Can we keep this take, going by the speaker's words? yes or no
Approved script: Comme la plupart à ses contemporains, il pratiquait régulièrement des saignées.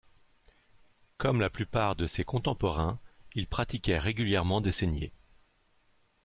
no